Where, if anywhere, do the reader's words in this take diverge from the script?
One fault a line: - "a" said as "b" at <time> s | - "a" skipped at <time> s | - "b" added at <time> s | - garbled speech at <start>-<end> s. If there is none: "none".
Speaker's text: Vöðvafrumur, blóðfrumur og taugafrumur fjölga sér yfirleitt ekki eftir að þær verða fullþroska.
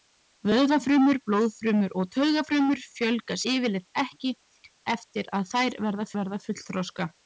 - "sér" skipped at 3.4 s
- "verða" added at 6.2 s